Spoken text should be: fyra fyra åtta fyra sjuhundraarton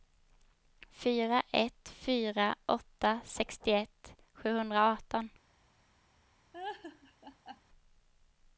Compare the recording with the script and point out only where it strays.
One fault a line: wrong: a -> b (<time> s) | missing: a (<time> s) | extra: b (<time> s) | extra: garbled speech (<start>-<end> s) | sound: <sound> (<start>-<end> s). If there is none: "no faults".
extra: ett (1.5 s)
wrong: fyra -> sextioett (3.2 s)
sound: laugh (6.5-7.6 s)